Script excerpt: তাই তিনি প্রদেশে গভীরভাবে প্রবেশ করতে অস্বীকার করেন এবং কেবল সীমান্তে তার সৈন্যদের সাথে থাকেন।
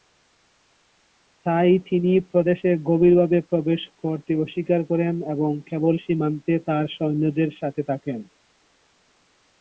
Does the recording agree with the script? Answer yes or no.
yes